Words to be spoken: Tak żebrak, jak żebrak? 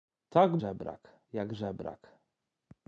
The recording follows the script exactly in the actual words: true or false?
true